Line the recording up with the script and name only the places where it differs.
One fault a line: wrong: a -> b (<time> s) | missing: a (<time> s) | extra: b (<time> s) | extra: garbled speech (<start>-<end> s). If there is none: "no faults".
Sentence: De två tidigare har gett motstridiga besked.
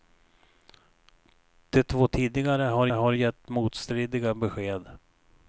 extra: har (2.9 s)